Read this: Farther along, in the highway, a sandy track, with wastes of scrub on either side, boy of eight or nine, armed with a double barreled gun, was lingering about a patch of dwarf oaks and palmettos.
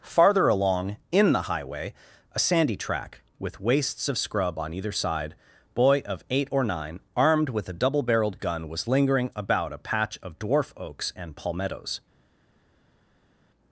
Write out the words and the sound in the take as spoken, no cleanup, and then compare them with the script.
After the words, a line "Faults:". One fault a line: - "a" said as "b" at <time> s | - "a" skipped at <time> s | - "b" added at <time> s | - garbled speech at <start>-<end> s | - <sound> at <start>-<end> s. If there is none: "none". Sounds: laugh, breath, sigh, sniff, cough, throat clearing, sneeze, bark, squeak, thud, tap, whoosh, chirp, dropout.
Farther along, in the highway, a sandy track, with wastes of scrub on either side, boy of eight or nine, armed with a double barreled gun, was lingering about a patch of dwarf oaks and palmettos.
Faults:
none